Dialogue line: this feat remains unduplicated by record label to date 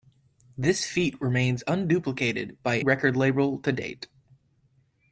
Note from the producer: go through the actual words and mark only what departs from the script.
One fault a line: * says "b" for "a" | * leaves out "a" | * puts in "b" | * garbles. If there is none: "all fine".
all fine